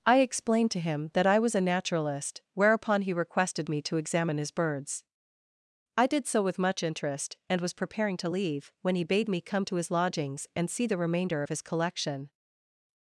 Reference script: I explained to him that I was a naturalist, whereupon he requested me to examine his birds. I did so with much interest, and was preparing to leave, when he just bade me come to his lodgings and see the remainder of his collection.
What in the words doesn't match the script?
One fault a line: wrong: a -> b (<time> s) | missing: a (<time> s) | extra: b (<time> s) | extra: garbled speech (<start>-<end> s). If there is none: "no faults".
missing: just (9.0 s)